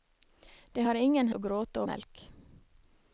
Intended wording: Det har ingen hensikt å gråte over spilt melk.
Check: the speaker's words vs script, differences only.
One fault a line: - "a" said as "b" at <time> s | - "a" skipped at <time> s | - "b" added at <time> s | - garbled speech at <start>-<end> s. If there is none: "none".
- "hensikt" skipped at 1.3 s
- "over spilt" skipped at 1.8 s